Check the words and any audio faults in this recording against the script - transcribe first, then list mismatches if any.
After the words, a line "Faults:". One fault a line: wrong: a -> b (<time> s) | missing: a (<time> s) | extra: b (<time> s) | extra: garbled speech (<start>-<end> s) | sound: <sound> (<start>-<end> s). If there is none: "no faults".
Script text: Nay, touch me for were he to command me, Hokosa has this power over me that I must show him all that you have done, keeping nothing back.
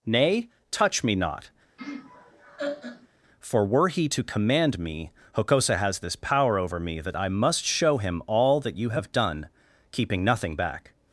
Nay, touch me not, for were he to command me, Hokosa has this power over me that I must show him all that you have done, keeping nothing back.
Faults:
extra: not (1.1 s)
sound: laugh (1.8-3.1 s)